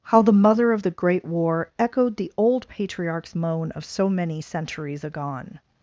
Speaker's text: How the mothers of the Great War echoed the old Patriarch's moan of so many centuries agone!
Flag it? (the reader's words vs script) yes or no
yes